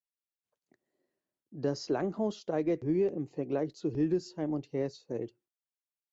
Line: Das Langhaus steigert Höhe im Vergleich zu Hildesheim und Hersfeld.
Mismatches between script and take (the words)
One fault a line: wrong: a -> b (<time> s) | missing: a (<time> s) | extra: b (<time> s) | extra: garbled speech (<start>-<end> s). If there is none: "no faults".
no faults